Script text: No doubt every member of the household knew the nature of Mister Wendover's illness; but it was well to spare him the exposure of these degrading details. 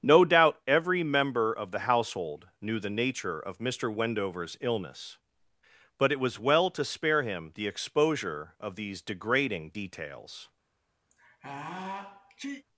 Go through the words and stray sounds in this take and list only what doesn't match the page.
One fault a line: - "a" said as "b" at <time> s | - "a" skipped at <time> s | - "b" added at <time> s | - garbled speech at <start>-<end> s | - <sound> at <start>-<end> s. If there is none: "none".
- sneeze at 11.1-12.6 s